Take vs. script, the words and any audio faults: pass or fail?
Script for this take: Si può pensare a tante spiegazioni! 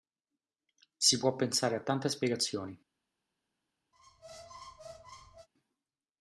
fail